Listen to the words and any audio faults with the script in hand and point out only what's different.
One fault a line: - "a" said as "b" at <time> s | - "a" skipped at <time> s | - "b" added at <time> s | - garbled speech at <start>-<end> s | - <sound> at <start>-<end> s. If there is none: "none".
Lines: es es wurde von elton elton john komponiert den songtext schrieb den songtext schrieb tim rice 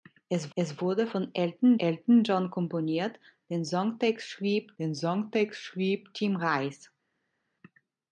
none